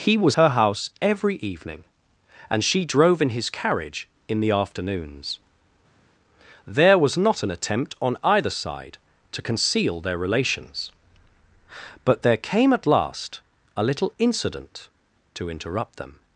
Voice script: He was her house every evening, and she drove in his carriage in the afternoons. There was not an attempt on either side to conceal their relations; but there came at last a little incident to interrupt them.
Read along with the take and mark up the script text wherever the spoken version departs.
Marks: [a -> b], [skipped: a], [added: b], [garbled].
He was her house every evening, and she drove in his carriage in the afternoons. There was not an attempt on either side to conceal their relations; but there came at last a little incident to interrupt them.